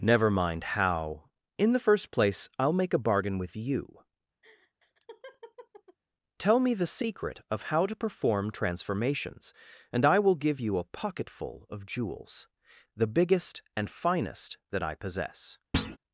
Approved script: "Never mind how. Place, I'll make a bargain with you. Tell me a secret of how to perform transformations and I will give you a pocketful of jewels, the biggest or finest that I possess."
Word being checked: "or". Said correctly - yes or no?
no